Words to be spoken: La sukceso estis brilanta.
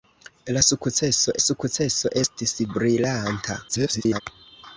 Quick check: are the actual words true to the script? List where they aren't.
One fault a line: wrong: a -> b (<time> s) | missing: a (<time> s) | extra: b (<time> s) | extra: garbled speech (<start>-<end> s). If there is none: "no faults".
extra: sukceso (1.4 s)
extra: garbled speech (3.7-4.2 s)